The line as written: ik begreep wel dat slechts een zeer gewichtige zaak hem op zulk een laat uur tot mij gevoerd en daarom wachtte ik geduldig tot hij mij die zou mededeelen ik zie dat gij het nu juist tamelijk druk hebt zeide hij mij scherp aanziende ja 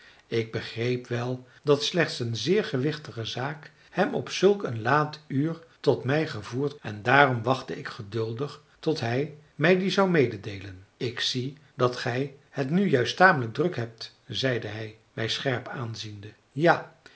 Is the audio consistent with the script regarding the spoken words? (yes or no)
yes